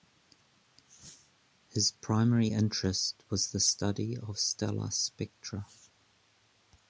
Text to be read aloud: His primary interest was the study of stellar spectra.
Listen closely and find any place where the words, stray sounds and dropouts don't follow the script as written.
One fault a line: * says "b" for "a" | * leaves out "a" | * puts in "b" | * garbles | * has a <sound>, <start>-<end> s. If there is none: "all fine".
all fine